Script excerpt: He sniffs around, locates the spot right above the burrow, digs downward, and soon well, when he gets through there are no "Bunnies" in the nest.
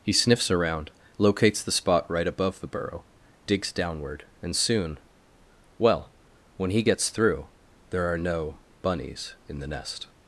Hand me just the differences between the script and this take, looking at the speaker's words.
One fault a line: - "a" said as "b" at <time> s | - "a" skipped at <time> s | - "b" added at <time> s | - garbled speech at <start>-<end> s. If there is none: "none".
none